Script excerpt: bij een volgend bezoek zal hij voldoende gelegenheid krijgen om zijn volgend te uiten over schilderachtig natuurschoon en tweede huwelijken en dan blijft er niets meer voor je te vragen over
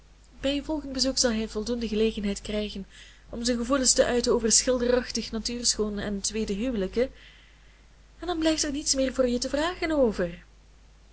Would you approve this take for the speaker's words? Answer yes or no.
no